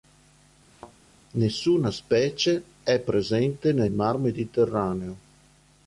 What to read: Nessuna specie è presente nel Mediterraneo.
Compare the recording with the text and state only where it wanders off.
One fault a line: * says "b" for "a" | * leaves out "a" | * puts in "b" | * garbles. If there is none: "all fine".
* puts in "mar"